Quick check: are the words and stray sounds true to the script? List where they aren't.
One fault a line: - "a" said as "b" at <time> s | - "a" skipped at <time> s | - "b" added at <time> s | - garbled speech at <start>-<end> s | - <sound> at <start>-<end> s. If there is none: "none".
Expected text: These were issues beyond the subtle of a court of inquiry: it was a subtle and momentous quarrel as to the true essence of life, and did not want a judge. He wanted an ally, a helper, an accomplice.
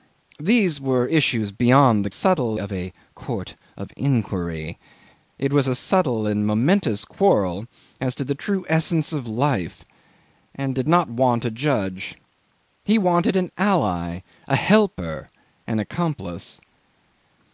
none